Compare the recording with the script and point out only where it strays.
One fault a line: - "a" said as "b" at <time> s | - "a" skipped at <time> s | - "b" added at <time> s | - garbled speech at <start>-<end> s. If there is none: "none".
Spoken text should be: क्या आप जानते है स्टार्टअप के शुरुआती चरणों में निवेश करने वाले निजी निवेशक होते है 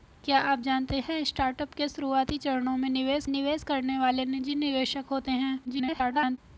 - "निवेश" added at 3.3 s
- garbled speech at 5.6-6.4 s